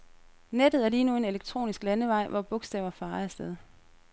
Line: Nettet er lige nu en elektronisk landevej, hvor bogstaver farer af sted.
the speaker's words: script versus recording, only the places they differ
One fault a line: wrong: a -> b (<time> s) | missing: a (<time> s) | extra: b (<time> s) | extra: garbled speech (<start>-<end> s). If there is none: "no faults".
no faults